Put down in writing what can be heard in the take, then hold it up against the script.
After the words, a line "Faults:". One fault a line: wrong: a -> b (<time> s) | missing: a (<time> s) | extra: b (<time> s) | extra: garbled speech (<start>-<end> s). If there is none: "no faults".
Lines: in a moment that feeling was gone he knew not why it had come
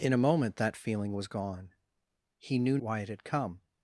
in a moment that feeling was gone he knew why it had come
Faults:
missing: not (2.8 s)